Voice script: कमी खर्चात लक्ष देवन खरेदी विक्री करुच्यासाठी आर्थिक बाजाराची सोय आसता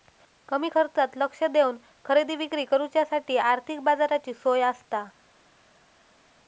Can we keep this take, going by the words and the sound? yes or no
yes